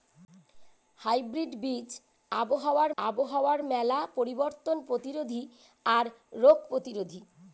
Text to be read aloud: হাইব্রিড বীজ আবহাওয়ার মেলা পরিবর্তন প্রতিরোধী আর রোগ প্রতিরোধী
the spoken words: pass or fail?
fail